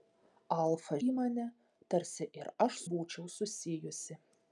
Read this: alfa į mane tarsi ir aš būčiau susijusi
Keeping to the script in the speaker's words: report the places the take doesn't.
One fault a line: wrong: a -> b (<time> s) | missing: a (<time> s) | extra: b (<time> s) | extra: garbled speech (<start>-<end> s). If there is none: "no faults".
no faults